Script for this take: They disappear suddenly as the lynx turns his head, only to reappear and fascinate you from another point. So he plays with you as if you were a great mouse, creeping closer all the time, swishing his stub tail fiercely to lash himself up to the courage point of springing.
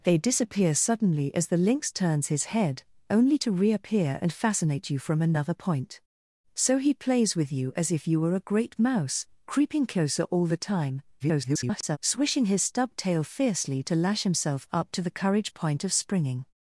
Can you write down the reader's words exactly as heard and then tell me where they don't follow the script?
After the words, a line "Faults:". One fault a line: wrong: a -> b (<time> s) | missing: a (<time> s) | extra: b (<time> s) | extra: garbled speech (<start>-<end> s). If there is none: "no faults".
They disappear suddenly as the lynx turns his head, only to reappear and fascinate you from another point. So he plays with you as if you were a great mouse, creeping closer all the time, [garbled] swishing his stub tail fiercely to lash himself up to the courage point of springing.
Faults:
extra: garbled speech (11.2-12.0 s)